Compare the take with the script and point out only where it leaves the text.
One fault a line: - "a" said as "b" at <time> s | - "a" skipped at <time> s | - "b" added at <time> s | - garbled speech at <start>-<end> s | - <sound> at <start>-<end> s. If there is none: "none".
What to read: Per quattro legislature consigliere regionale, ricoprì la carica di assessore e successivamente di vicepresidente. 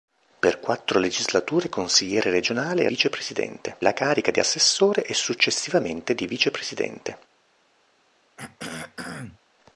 - "ricoprì" said as "vicepresidente" at 2.9 s
- throat clearing at 8.4-9.4 s